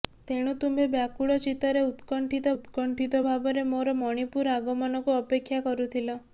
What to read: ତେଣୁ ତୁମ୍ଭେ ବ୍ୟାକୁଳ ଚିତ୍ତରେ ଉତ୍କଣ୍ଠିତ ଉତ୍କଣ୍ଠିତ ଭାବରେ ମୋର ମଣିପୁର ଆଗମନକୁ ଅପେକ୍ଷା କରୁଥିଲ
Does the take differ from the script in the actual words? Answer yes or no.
no